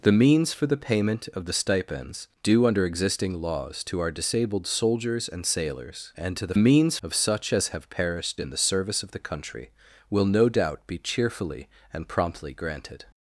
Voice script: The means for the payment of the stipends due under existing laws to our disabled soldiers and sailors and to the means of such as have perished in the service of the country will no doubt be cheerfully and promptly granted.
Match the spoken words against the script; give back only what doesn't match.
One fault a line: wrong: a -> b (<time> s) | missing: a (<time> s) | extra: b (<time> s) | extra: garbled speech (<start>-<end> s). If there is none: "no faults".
no faults